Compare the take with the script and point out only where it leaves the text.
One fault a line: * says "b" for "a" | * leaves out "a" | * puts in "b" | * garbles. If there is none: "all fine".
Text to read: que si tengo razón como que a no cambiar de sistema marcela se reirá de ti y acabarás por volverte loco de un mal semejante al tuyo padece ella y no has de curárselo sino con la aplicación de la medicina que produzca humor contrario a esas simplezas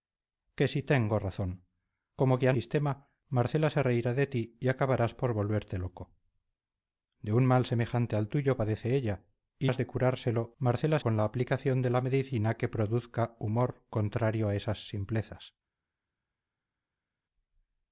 * leaves out "no cambiar de"
* leaves out "no"
* says "marcela" for "sino"